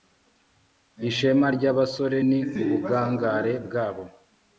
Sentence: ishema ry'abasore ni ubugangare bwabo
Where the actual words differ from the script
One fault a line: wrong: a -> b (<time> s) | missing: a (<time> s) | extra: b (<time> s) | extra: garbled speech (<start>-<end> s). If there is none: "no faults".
no faults